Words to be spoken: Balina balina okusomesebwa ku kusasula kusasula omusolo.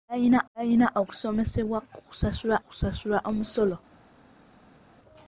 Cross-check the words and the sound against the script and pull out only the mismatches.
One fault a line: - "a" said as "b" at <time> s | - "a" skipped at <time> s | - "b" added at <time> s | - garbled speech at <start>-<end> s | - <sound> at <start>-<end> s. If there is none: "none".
none